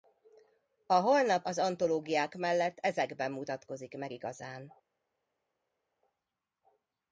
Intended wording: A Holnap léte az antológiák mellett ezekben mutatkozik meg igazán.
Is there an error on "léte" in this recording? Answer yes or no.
yes